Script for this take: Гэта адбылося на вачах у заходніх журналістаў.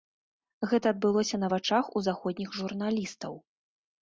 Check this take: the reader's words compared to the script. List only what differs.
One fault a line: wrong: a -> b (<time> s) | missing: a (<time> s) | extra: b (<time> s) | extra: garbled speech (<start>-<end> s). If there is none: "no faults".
no faults